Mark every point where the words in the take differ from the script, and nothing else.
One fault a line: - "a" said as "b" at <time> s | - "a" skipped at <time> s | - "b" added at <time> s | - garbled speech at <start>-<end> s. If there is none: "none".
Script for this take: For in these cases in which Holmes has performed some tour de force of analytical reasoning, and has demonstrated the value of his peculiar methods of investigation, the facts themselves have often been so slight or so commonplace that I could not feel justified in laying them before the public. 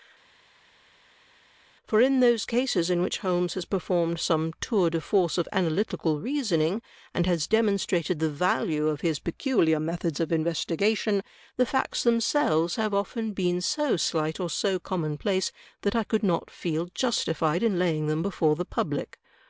- "these" said as "those" at 2.2 s